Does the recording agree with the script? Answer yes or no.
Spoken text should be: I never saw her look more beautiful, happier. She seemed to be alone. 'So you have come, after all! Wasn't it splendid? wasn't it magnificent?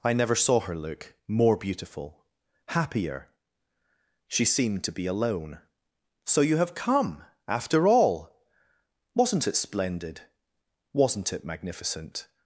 yes